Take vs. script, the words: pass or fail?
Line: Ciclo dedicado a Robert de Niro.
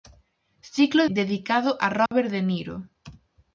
pass